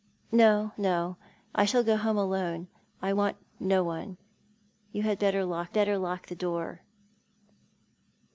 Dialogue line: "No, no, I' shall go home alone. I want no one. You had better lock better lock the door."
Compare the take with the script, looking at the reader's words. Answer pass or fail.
pass